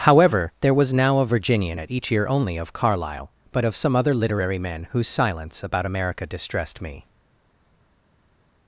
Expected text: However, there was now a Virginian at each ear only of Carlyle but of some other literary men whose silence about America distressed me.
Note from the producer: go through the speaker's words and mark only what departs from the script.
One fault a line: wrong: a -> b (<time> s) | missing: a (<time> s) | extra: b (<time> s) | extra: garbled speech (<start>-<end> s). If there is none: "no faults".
no faults